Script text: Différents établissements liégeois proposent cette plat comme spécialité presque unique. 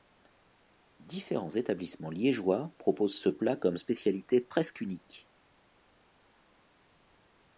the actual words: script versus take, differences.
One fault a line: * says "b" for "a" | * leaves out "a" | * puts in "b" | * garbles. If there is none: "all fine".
* says "ce" for "cette"